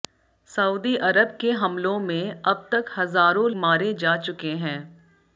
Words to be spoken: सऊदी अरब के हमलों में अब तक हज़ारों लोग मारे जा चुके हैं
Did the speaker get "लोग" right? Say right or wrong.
wrong